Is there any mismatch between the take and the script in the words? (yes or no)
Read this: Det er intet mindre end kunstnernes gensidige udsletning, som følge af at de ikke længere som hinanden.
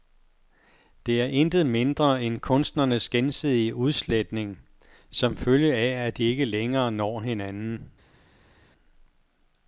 yes